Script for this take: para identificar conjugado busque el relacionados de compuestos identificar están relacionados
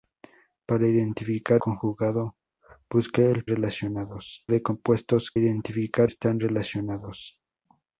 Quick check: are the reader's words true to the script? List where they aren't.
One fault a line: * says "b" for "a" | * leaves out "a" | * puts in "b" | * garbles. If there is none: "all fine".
all fine